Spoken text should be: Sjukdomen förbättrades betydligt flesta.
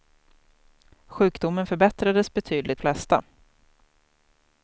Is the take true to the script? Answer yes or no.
yes